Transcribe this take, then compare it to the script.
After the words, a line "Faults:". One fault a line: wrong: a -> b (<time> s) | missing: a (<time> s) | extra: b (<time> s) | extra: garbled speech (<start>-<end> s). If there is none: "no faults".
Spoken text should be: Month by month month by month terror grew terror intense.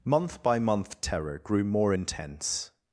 Month by month terror grew more intense.
Faults:
missing: month by month (1.0 s)
wrong: terror -> more (1.6 s)